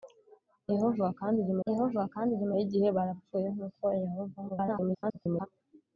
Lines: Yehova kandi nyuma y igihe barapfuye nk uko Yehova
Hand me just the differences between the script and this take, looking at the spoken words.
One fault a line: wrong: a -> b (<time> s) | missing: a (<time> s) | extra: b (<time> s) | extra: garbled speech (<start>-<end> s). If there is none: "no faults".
extra: yehova kandi nyuma (1.7 s)
extra: garbled speech (4.5-5.5 s)